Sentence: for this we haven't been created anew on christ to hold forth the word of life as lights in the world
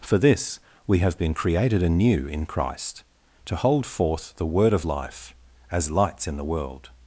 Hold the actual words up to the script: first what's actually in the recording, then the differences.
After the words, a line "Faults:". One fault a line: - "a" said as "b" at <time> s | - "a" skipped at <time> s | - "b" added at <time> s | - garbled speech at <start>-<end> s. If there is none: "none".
for this we have been created anew in christ to hold forth the word of life as lights in the world
Faults:
- "haven't" said as "have" at 1.0 s
- "on" said as "in" at 2.3 s